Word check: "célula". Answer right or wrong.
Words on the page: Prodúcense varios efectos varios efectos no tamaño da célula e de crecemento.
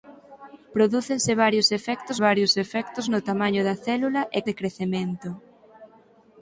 right